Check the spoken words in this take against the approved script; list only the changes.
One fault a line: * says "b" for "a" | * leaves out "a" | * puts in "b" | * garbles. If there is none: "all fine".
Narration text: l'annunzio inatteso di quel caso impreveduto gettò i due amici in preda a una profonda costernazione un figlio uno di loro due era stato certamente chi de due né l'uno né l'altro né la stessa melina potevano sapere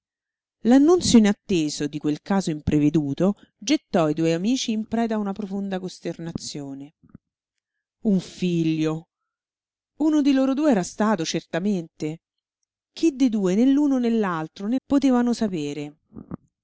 * leaves out "la stessa melina"